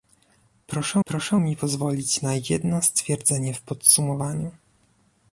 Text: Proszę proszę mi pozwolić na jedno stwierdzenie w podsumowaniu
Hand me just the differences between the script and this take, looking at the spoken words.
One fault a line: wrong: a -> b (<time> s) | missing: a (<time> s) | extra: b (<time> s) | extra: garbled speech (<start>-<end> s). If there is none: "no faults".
no faults